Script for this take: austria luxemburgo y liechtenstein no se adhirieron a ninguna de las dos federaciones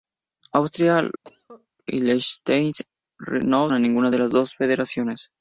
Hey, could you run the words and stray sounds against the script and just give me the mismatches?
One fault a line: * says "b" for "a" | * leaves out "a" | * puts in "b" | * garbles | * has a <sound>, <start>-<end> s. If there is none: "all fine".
* leaves out "luxemburgo"
* has a cough, 1.2-1.7 s
* leaves out "se adhirieron"